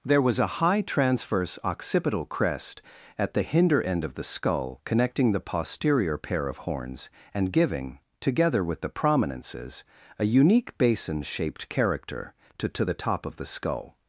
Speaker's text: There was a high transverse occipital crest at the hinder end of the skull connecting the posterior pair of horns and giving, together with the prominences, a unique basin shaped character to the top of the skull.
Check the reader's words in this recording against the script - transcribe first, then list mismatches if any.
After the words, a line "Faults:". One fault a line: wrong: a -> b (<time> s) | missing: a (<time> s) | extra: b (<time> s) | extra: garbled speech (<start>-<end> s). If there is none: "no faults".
There was a high transverse occipital crest at the hinder end of the skull connecting the posterior pair of horns and giving, together with the prominences, a unique basin shaped character to to the top of the skull.
Faults:
extra: to (12.7 s)